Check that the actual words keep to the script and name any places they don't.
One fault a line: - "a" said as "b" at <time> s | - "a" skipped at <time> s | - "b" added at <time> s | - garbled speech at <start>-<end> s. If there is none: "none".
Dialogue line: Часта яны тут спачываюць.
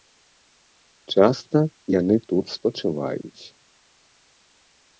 none